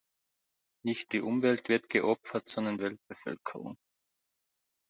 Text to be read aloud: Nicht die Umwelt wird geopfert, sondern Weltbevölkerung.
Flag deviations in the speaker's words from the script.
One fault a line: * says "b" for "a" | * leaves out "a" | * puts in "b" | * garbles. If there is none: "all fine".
all fine